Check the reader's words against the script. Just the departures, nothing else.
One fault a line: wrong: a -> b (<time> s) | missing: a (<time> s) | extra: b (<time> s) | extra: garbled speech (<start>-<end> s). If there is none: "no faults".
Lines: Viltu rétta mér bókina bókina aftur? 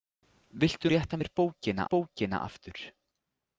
no faults